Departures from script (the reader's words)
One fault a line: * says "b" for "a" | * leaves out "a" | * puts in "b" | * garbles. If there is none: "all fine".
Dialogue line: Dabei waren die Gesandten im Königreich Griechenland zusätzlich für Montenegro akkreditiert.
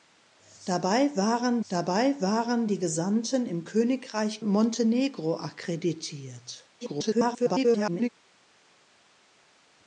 * puts in "dabei waren"
* leaves out "Griechenland zusätzlich für"
* garbles